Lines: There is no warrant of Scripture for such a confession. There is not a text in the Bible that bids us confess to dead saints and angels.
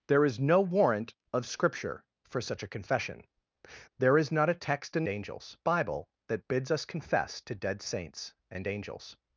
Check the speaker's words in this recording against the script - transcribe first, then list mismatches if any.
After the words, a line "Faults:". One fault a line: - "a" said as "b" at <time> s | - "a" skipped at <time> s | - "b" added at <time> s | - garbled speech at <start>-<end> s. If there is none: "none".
There is no warrant of Scripture for such a confession. There is not a text in angels Bible that bids us confess to dead saints and angels.
Faults:
- "the" said as "angels" at 5.1 s